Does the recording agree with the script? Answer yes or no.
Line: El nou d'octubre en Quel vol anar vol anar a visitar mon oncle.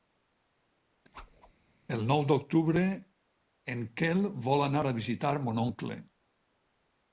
no